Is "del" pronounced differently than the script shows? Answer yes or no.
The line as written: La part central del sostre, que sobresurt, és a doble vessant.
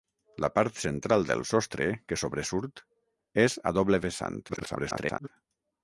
no